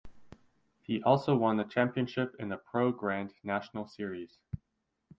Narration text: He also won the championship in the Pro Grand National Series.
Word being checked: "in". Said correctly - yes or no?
yes